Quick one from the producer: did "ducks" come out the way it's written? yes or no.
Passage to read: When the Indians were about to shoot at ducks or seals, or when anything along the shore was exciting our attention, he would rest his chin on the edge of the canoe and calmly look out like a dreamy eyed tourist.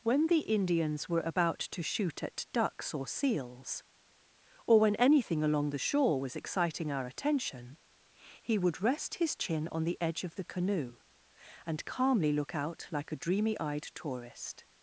yes